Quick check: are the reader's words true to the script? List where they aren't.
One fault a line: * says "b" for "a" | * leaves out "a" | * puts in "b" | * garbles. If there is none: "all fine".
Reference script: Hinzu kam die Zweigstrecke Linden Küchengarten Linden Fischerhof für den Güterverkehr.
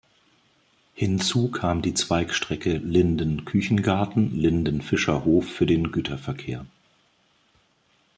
all fine